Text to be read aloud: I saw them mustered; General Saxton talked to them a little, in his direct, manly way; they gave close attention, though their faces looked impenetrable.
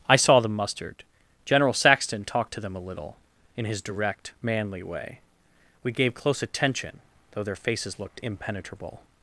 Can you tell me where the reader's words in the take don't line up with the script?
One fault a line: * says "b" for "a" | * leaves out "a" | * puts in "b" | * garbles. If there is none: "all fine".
* says "we" for "they"